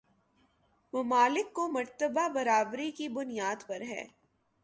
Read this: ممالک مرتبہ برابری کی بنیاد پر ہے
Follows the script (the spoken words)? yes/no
no